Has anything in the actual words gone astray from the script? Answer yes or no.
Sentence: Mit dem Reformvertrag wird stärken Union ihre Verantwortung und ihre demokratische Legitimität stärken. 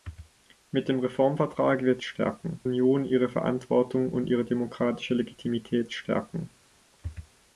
no